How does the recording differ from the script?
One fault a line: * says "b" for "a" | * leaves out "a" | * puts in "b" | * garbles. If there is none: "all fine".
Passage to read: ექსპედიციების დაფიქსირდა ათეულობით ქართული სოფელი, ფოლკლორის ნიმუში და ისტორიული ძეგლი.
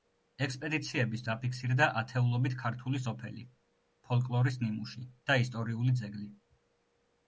all fine